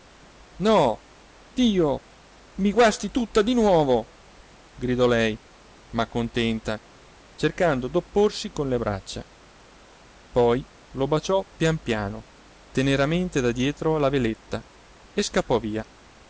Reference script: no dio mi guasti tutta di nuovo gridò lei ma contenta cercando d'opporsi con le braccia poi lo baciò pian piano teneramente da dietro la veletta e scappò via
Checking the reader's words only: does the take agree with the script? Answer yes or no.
yes